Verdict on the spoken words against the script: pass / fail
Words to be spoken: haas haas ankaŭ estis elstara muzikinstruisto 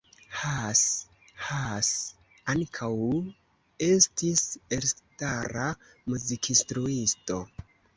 pass